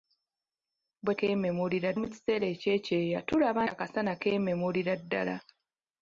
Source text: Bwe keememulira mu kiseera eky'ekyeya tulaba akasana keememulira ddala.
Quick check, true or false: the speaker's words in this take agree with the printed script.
true